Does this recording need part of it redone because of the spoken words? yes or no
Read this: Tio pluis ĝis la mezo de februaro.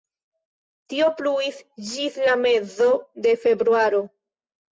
no